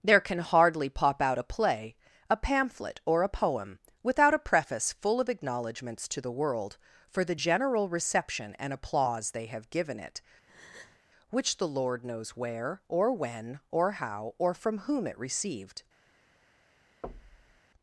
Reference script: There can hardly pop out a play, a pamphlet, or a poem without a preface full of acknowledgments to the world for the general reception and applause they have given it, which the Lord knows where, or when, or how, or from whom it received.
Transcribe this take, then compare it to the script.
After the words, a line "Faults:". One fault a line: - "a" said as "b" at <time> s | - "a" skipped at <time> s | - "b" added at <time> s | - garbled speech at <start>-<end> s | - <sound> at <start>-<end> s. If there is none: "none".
There can hardly pop out a play, a pamphlet, or a poem without a preface full of acknowledgments to the world for the general reception and applause they have given it, which the Lord knows where, or when, or how, or from whom it received.
Faults:
- breath at 10.5-11.0 s
- thud at 17.0-17.6 s